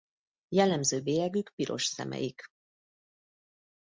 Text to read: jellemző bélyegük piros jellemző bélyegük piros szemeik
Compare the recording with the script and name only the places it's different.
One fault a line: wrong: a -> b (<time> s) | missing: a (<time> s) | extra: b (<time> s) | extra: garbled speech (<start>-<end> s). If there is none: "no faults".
missing: jellemző bélyegük piros (1.8 s)